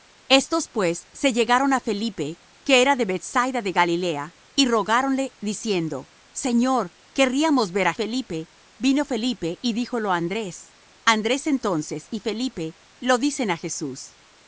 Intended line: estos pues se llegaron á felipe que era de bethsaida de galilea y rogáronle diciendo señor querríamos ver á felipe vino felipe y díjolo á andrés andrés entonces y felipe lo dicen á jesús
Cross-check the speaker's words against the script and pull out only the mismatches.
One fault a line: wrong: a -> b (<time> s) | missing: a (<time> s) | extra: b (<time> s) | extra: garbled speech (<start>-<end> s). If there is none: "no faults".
no faults